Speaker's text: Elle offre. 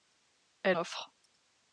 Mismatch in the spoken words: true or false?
false